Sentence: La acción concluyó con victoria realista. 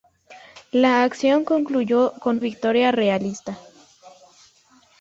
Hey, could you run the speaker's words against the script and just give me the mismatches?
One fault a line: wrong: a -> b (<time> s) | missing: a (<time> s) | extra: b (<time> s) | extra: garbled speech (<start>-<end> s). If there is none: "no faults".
no faults